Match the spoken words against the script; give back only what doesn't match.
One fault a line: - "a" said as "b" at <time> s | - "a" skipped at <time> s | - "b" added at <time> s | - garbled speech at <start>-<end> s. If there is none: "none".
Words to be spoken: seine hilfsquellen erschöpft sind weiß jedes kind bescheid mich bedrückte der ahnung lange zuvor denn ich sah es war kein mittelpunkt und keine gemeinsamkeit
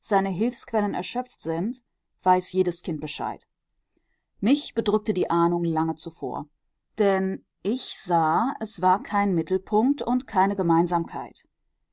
- "der" said as "die" at 5.1 s